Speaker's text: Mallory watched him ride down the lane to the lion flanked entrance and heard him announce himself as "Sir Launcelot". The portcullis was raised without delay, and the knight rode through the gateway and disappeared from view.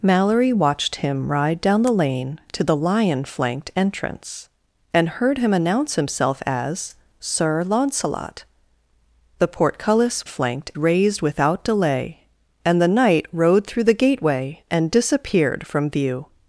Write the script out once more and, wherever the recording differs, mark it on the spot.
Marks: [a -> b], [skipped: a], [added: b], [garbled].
Mallory watched him ride down the lane to the lion flanked entrance and heard him announce himself as "Sir Launcelot". The portcullis [was -> flanked] raised without delay, and the knight rode through the gateway and disappeared from view.